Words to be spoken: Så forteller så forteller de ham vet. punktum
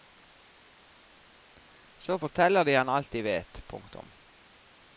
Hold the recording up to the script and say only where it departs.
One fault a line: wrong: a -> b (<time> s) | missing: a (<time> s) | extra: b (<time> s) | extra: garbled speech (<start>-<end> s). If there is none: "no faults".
wrong: så forteller -> de ham alt (2.6 s)
missing: ham (3.2 s)